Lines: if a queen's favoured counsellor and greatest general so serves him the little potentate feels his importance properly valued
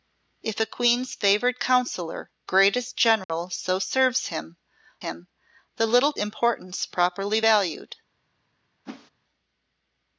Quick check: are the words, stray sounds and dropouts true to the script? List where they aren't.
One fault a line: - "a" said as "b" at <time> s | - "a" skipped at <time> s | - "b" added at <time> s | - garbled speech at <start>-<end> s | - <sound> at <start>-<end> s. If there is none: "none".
- "and" skipped at 2.3 s
- dropout at 3.2-3.3 s
- "him" added at 5.0 s
- "potentate feels his" skipped at 6.1 s
- whoosh at 8.9-9.1 s